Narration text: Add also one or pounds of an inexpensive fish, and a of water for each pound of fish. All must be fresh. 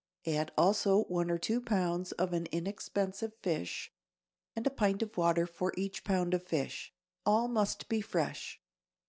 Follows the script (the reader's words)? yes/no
no